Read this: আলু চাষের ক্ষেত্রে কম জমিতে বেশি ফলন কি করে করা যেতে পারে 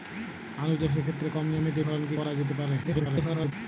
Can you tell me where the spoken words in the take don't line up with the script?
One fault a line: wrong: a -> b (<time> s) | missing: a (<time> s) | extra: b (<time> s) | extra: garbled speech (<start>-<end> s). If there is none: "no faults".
missing: বেশি (1.8 s)
missing: করে (2.2 s)
extra: garbled speech (2.8-3.5 s)